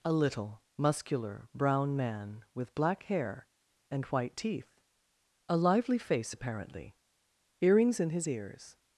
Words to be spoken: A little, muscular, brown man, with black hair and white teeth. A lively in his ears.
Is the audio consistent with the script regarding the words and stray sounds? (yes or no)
no